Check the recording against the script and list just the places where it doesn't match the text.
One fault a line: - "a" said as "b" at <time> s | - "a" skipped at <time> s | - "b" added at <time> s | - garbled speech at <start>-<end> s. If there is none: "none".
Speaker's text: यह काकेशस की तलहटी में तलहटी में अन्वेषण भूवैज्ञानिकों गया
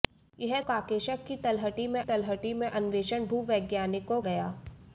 none